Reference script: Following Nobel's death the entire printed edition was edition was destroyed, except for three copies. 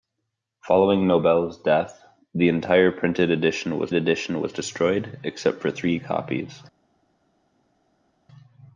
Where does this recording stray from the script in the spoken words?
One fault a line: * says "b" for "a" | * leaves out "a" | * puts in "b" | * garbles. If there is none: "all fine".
all fine